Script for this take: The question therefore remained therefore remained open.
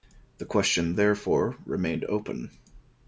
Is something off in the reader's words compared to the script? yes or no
yes